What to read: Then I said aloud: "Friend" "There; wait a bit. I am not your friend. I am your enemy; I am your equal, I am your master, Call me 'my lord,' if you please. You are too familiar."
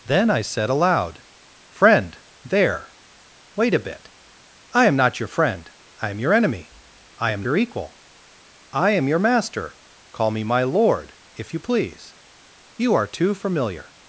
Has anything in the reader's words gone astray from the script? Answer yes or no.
no